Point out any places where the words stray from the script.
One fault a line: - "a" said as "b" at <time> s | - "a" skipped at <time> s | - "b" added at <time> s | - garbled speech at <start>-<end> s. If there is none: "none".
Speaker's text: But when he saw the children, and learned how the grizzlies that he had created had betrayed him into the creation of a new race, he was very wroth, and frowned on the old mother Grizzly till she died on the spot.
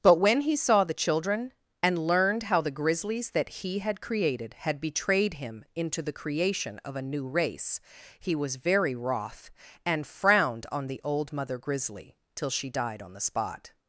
none